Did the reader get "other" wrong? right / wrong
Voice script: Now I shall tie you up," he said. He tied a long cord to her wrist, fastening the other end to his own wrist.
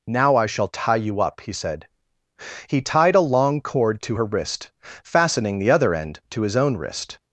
right